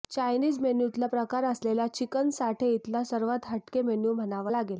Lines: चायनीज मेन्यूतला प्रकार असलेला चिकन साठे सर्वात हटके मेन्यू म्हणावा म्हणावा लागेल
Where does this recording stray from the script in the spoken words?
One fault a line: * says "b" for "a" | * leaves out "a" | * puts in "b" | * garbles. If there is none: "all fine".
* puts in "इथला"
* leaves out "म्हणावा"